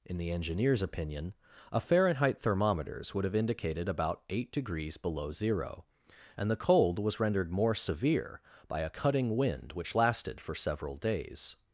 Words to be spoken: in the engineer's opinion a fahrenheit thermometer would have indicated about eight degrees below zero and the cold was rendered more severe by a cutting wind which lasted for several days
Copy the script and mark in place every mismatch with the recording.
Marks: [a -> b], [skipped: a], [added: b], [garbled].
in the engineer's opinion a fahrenheit [thermometer -> thermometers] would have indicated about eight degrees below zero and the cold was rendered more severe by a cutting wind which lasted for several days